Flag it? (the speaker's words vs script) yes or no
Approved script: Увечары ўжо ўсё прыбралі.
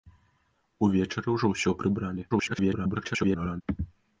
yes